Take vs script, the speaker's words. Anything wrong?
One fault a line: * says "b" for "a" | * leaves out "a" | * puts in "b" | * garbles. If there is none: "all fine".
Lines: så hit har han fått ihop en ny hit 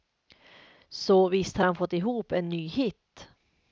* says "visst" for "hit"